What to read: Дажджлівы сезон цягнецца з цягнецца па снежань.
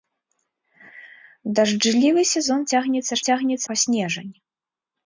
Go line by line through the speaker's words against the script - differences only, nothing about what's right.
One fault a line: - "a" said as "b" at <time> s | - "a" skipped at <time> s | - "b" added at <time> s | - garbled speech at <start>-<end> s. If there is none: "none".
none